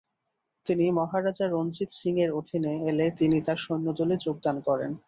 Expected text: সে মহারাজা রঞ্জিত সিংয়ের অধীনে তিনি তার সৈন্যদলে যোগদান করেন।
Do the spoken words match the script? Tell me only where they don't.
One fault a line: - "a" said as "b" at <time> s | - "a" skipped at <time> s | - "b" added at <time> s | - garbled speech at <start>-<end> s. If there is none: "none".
- "সে" said as "তিনি" at 0.7 s
- "এলে" added at 2.9 s